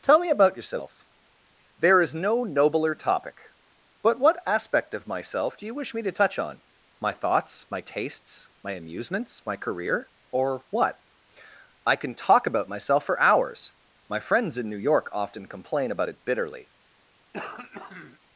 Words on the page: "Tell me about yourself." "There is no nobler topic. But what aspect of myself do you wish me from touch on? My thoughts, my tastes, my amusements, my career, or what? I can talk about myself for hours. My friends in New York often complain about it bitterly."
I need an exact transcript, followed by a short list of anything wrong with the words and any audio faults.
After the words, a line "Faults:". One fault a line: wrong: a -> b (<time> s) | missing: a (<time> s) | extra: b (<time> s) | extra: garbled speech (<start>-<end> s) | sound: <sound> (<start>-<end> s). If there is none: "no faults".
"Tell me about yourself." "There is no nobler topic. But what aspect of myself do you wish me to touch on? My thoughts, my tastes, my amusements, my career, or what? I can talk about myself for hours. My friends in New York often complain about it bitterly."
Faults:
wrong: from -> to (6.0 s)
sound: throat clearing (17.3-18.2 s)